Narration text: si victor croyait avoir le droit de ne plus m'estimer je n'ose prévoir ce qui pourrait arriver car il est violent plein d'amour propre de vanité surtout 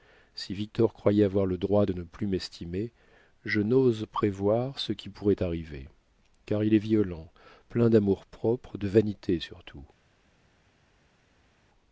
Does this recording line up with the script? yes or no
yes